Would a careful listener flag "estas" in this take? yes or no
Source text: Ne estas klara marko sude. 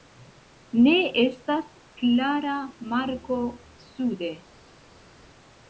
no